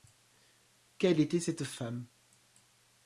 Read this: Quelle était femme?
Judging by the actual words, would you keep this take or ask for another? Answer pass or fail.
fail